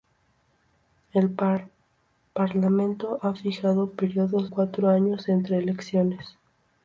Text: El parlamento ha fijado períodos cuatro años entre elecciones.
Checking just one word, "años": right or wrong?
right